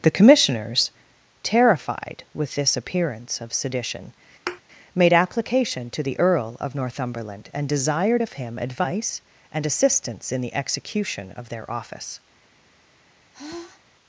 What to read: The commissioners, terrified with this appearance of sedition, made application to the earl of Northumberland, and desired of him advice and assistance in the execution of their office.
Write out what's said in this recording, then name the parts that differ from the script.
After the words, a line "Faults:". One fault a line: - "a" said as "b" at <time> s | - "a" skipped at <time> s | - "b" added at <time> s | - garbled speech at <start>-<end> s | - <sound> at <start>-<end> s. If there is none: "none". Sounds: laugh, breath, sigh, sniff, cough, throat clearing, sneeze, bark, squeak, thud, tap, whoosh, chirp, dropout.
The commissioners, terrified with this appearance of sedition, made application to the earl of Northumberland, and desired of him advice and assistance in the execution of their office.
Faults:
- thud at 4.5-4.6 s
- sigh at 13.3-13.9 s